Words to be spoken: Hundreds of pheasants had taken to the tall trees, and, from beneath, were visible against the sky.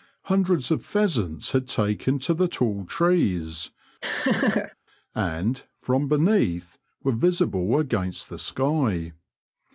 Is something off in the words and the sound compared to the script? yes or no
yes